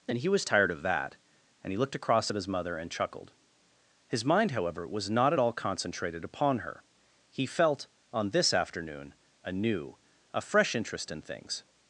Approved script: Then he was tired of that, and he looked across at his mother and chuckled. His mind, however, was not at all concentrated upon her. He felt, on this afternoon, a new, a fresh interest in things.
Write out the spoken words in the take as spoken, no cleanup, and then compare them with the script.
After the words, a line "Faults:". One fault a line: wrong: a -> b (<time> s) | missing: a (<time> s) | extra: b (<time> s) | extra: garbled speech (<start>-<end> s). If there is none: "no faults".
And he was tired of that, and he looked across at his mother and chuckled. His mind, however, was not at all concentrated upon her. He felt, on this afternoon, a new, a fresh interest in things.
Faults:
wrong: Then -> And (0.1 s)